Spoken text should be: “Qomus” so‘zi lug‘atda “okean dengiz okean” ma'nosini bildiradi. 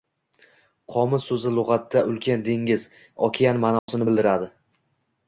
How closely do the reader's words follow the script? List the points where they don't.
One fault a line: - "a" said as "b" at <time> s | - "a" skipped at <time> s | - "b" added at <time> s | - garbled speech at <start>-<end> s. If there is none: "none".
- "okean" said as "ulkan" at 2.1 s